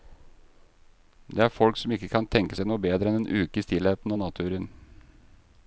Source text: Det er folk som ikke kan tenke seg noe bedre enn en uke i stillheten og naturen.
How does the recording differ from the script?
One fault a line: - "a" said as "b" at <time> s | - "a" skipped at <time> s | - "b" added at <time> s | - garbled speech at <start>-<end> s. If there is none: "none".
none